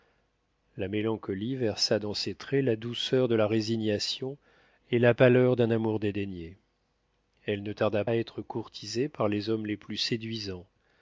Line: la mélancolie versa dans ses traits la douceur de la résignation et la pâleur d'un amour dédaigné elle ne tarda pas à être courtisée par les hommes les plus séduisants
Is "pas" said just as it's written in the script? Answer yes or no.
no